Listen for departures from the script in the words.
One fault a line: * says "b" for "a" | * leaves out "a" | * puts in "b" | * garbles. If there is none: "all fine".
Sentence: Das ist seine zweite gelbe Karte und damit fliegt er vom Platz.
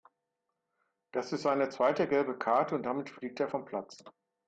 all fine